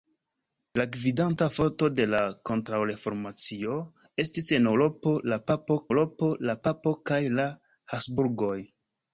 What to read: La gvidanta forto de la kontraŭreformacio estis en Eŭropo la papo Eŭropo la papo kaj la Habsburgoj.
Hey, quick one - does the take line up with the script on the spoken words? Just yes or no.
yes